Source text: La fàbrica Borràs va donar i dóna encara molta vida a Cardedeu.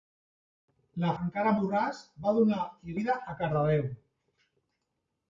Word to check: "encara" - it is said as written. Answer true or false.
false